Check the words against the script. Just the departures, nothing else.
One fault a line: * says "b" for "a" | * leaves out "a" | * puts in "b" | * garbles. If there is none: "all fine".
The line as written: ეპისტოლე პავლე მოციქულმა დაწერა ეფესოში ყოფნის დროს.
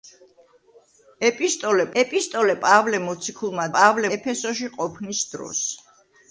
* puts in "ეპისტოლე"
* says "პავლე" for "დაწერა"